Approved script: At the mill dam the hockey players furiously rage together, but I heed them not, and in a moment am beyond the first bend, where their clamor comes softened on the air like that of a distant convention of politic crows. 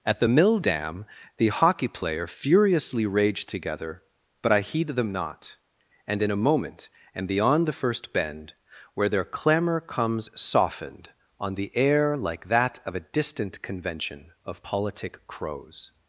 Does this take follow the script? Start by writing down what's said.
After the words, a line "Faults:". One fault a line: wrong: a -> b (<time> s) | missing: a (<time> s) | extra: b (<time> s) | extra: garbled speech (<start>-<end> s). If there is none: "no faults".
At the mill dam the hockey player furiously rage together, but I heed them not, and in a moment am beyond the first bend, where their clamor comes softened on the air like that of a distant convention of politic crows.
Faults:
wrong: players -> player (1.9 s)